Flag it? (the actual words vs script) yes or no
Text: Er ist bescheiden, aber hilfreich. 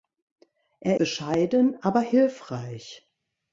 yes